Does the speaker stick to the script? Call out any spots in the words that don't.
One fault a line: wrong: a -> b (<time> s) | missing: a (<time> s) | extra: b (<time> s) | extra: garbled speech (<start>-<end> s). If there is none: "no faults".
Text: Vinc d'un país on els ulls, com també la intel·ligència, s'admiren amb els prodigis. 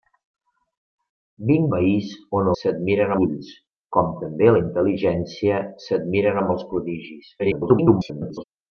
missing: d'un (1.7 s)
wrong: els -> s'admiren (2.6 s)
extra: garbled speech (7.4-8.4 s)